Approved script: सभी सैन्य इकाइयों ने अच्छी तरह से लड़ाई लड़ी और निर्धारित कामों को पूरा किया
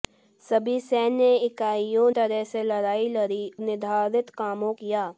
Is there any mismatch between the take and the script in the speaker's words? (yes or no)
yes